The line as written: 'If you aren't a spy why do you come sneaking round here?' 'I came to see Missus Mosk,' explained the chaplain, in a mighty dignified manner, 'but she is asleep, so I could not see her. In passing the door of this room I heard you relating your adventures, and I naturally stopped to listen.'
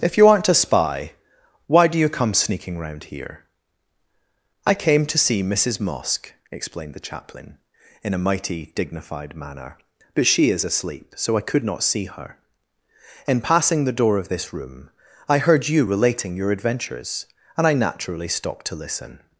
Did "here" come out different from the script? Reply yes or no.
no